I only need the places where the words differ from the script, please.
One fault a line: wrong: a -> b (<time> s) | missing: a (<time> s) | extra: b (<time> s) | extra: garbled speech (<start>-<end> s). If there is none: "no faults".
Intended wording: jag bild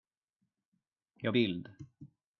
no faults